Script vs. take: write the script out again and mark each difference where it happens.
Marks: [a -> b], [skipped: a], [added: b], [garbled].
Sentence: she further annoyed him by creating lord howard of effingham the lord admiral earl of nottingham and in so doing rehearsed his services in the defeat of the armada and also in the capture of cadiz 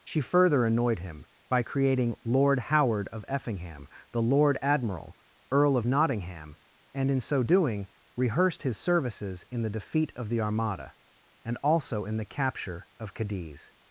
she further annoyed him by creating lord howard of effingham the lord admiral earl of nottingham and in so doing rehearsed his services in the defeat of the armada and also in the capture of cadiz